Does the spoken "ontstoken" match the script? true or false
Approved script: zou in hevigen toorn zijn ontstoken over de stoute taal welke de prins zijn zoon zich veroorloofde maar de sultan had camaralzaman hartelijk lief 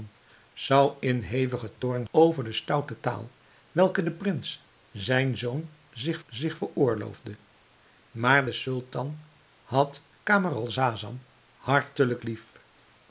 false